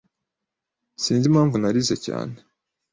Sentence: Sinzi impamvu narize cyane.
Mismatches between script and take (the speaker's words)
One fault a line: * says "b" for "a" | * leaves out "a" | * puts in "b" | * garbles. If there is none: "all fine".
all fine